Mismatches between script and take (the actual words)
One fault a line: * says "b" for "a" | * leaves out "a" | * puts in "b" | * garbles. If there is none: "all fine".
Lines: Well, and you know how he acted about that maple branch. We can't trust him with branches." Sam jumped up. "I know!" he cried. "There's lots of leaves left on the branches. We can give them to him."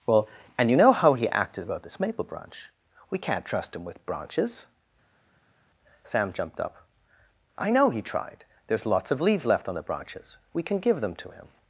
* says "this" for "that"
* says "tried" for "cried"